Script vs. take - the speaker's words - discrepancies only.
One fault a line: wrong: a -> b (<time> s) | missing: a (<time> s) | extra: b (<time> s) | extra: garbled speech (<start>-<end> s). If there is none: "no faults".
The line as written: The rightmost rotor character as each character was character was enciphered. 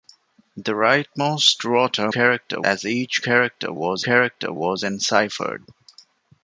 no faults